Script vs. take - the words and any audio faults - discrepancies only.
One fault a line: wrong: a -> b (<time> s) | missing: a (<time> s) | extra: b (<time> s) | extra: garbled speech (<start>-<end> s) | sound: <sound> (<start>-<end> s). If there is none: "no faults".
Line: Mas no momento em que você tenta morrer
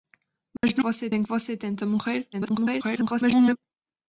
sound: dropout (0.6-0.6 s)
wrong: momento -> você (0.8 s)
extra: garbled speech (2.3-3.6 s)